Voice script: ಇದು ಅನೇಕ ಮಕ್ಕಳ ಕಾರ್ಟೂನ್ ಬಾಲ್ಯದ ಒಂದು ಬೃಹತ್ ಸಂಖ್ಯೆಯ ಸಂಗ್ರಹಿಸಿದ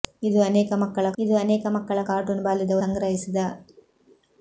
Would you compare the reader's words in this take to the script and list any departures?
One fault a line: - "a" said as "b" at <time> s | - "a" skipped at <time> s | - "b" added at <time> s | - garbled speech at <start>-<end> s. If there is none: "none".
- "ಕಾರ್ಟೂನ್ ಬಾಲ್ಯದ ಒಂದು ಬೃಹತ್ ಸಂಖ್ಯೆಯ" said as "ಇದು ಅನೇಕ ಮಕ್ಕಳ ಕಾರ್ಟೂನ್ ಬಾಲ್ಯದ" at 1.2 s